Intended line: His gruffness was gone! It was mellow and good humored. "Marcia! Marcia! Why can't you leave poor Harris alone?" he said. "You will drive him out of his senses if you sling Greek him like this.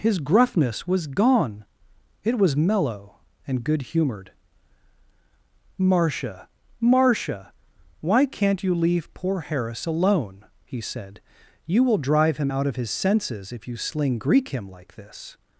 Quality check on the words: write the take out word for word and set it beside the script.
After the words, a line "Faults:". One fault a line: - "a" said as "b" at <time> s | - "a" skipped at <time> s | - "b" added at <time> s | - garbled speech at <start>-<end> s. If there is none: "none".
His gruffness was gone! It was mellow and good humored. "Marcia! Marcia! Why can't you leave poor Harris alone?" he said. "You will drive him out of his senses if you sling Greek him like this.
Faults:
none